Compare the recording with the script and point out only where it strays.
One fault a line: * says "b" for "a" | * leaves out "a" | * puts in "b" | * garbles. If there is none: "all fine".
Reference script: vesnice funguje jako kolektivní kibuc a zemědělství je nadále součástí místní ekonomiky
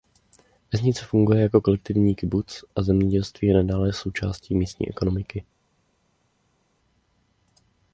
all fine